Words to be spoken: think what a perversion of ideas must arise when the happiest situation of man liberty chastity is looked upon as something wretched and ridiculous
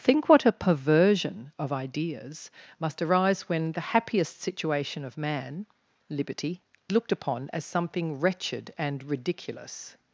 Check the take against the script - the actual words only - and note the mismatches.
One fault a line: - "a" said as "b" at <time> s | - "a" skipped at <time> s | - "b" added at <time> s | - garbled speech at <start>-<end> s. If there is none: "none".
- "chastity is" skipped at 6.6 s